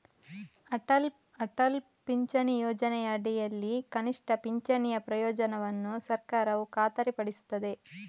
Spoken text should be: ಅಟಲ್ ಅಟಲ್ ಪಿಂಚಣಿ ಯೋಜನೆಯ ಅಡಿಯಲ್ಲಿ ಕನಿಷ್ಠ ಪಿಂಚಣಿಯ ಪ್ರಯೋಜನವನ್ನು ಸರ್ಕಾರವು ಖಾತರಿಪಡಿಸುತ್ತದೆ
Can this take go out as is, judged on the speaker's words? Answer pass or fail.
pass